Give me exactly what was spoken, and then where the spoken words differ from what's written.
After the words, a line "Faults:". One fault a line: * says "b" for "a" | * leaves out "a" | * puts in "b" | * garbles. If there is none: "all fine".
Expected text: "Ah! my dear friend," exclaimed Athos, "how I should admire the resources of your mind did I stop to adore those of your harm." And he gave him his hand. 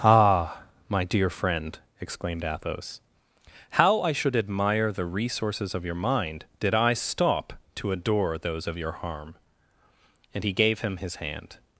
"Ah! my dear friend," exclaimed Athos, "how I should admire the resources of your mind did I stop to adore those of your harm." And he gave him his hand.
Faults:
all fine